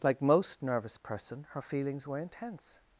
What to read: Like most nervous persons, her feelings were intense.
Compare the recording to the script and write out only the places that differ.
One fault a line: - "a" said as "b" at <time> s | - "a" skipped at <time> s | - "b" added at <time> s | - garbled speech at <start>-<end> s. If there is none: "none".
- "persons" said as "person" at 1.0 s